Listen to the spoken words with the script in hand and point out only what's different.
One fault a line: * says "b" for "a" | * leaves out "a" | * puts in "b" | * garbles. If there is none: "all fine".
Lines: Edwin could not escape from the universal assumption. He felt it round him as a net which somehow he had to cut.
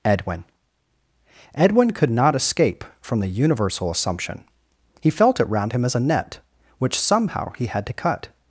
* puts in "edwin"